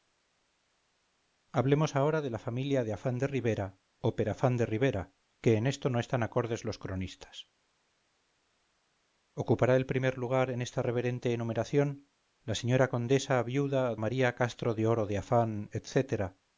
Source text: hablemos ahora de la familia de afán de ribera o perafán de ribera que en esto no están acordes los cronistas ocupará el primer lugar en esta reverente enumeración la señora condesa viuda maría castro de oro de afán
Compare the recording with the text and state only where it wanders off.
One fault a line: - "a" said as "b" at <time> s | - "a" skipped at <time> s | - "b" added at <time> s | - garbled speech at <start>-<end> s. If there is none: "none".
none